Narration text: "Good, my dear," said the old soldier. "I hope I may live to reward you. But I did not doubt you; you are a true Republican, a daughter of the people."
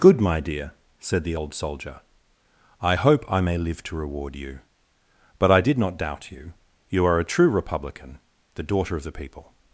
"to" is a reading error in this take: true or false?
false